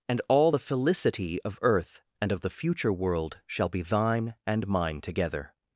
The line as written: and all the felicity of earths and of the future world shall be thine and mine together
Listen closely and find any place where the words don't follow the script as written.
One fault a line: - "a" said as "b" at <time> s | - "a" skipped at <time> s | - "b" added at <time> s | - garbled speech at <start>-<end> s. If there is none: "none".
- "earths" said as "earth" at 1.6 s